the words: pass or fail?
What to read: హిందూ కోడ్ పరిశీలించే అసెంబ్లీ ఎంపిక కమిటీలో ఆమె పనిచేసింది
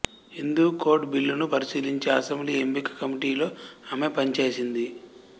fail